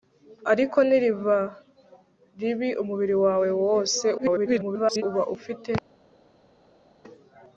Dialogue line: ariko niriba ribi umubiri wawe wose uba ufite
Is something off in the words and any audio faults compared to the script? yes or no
yes